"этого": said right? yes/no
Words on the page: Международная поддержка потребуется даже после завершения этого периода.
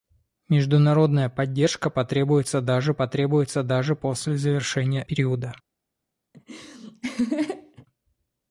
no